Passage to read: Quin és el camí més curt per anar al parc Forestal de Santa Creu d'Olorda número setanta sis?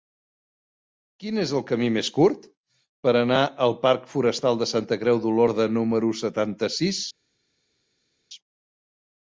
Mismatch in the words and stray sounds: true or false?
false